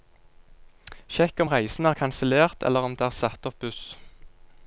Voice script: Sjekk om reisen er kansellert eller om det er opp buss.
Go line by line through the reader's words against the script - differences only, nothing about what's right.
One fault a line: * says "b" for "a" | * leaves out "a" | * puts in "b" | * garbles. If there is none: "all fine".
* puts in "satt"